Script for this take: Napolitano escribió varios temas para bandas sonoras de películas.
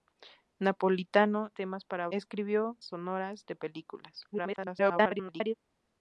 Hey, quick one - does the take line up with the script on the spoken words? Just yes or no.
no